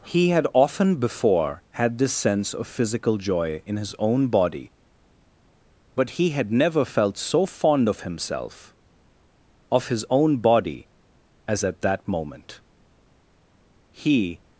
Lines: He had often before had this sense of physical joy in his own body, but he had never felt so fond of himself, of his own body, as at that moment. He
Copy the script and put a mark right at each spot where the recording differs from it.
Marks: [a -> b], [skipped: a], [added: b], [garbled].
He had often before had this sense of physical joy in his own body, but he had never felt so fond of himself, of his own body, as at that moment. He